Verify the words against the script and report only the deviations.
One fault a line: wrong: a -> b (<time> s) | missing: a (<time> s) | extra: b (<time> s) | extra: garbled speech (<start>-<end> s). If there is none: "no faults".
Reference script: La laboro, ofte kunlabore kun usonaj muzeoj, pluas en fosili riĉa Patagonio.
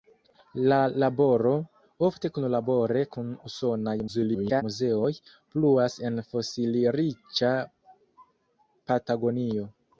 extra: garbled speech (4.1-4.6 s)